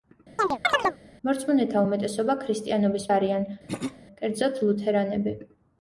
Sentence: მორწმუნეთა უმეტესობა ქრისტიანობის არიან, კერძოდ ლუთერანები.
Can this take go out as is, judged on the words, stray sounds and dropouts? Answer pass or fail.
fail